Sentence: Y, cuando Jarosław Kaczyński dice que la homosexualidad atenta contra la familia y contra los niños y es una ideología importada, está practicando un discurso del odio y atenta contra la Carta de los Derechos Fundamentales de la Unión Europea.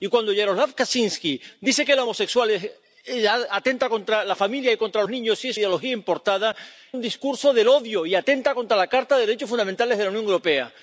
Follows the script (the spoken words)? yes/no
no